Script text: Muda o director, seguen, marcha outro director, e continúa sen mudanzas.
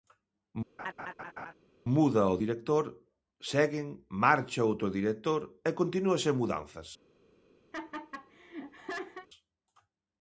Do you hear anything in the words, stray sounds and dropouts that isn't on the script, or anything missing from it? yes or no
yes